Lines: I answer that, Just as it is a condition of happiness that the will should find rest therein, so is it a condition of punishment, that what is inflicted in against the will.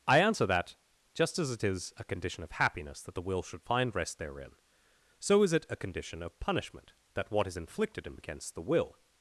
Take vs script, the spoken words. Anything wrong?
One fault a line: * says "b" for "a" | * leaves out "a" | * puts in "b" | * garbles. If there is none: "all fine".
all fine